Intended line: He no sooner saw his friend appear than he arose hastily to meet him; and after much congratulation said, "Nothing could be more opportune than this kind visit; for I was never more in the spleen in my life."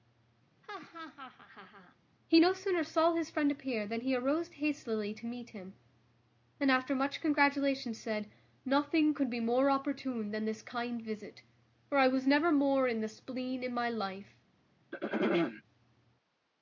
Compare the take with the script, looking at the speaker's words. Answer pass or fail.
pass